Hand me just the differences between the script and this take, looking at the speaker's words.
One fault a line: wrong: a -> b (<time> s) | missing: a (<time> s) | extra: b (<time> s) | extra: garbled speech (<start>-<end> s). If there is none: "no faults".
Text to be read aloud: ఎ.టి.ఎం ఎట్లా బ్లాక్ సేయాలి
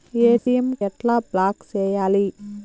no faults